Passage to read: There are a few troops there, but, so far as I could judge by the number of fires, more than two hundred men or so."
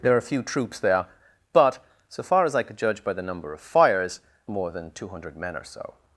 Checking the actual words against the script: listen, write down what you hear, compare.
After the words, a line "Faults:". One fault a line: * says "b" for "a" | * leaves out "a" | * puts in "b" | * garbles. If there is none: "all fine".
There are a few troops there, but, so far as I could judge by the number of fires, more than two hundred men or so."
Faults:
all fine